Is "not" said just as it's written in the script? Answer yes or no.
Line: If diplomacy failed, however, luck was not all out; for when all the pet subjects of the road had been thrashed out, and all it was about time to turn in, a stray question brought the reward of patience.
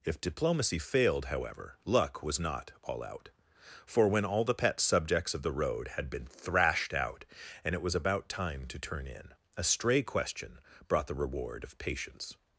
yes